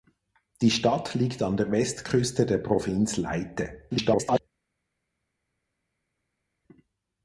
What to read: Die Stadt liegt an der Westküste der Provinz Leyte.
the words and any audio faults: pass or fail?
fail